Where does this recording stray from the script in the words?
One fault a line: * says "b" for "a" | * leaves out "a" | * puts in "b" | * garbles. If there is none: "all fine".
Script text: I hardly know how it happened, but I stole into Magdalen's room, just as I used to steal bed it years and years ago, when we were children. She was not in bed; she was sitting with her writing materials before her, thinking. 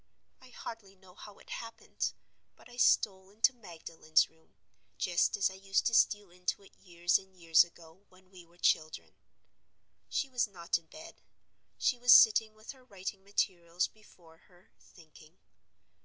* says "into" for "bed"